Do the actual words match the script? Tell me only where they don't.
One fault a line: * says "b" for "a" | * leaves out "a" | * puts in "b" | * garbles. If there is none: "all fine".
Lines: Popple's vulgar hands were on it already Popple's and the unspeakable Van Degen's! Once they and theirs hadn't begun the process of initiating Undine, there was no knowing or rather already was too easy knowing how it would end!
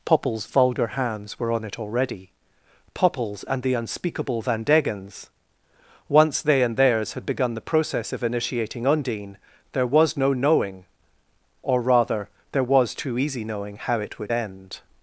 * says "had" for "hadn't"
* says "there" for "already"